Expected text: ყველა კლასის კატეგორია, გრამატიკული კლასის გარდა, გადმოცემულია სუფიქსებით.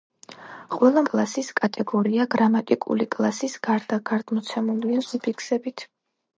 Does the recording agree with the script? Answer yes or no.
yes